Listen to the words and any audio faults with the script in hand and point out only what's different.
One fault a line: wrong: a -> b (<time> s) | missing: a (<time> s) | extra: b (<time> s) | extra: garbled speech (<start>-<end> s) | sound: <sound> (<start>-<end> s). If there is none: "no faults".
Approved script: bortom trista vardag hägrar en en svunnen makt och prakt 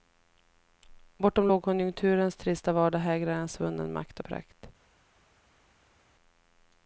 extra: lågkonjunkturens (1.5 s)
missing: en (3.5 s)